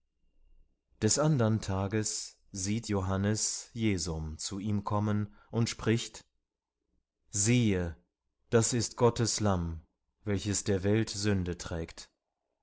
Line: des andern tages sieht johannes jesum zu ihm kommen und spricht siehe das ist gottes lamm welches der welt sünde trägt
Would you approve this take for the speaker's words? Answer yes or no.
yes